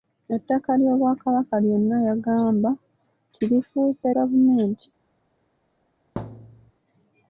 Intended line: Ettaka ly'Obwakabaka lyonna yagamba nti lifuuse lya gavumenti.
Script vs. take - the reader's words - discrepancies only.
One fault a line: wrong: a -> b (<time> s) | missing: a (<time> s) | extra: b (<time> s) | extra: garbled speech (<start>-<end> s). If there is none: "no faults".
missing: lya (4.1 s)